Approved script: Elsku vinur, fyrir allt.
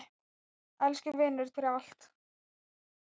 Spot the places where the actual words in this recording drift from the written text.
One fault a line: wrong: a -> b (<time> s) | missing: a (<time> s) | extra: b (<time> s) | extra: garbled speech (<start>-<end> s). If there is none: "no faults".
no faults